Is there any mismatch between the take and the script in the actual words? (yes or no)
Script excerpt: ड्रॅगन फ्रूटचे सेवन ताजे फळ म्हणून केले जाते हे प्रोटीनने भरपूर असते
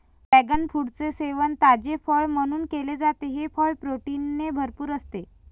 yes